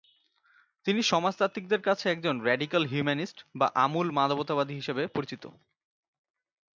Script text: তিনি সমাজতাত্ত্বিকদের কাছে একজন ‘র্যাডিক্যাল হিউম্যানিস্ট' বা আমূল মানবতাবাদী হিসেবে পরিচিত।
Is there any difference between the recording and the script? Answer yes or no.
no